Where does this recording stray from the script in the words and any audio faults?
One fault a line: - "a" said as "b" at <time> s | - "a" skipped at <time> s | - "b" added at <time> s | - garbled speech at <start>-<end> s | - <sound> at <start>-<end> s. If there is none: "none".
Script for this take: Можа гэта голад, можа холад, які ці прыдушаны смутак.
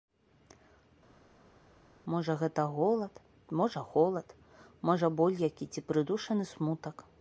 - "можа боль" added at 4.9 s